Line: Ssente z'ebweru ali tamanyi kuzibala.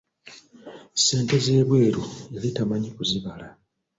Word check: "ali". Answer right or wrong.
wrong